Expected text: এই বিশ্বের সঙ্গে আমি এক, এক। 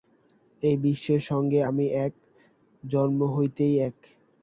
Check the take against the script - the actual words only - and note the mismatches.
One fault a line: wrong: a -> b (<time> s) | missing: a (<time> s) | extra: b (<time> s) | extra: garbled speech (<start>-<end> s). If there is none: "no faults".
extra: জন্ম হইতেই (2.8 s)